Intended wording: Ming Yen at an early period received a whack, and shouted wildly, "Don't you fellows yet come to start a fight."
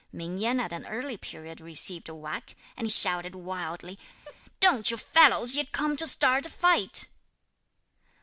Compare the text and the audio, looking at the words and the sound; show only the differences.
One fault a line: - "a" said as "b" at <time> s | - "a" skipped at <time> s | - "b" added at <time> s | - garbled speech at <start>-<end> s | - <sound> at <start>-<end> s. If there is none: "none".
- laugh at 4.3-4.4 s